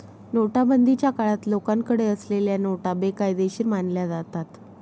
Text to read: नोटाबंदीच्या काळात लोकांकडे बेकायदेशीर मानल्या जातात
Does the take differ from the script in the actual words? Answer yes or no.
yes